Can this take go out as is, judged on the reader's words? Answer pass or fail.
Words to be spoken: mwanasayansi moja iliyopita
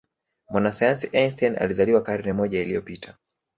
fail